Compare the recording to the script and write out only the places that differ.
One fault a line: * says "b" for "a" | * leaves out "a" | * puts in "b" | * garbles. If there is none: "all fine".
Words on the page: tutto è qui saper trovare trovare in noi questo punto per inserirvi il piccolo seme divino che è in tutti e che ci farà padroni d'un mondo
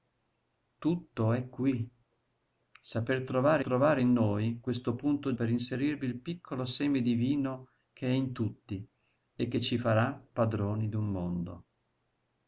all fine